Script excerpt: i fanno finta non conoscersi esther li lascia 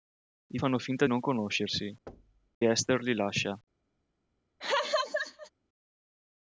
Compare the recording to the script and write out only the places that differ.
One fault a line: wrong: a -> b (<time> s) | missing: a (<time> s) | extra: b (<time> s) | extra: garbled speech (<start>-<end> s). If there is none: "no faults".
no faults